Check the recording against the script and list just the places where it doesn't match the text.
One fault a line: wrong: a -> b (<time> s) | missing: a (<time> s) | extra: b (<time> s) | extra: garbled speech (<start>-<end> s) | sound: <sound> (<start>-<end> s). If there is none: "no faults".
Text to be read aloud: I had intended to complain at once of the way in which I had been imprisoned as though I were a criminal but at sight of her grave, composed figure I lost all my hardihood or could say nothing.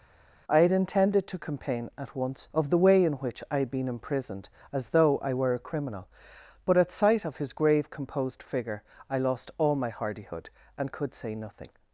wrong: her -> his (7.4 s)
wrong: or -> and (10.8 s)